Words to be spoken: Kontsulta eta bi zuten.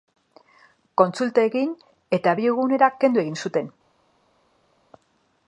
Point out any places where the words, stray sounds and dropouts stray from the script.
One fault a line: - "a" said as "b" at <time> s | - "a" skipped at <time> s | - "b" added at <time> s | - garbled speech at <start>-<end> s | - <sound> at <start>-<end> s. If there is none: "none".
- "egin" added at 1.5 s
- "egunera kendu egin" added at 2.6 s